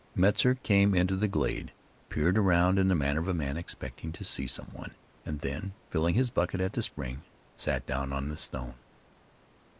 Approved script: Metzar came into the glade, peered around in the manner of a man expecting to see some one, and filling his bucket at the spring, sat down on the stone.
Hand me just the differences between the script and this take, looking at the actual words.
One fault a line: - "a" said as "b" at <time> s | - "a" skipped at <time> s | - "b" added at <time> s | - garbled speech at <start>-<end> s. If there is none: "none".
- "then" added at 5.4 s